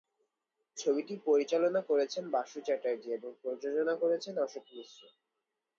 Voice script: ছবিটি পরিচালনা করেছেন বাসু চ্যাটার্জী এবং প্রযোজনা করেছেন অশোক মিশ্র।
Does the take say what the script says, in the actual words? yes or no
yes